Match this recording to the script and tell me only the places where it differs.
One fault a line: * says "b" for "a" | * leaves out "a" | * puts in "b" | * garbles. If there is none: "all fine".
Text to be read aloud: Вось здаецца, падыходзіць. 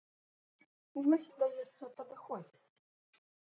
all fine